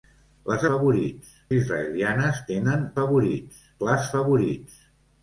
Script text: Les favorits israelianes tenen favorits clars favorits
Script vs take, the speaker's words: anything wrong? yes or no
no